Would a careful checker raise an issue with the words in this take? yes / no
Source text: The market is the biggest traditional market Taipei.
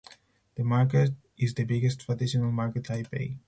no